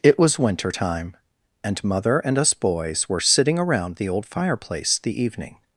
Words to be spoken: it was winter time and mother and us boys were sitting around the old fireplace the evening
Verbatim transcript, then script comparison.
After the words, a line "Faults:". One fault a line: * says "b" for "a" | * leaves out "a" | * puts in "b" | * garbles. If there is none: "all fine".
it was winter time and mother and us boys were sitting around the old fireplace the evening
Faults:
all fine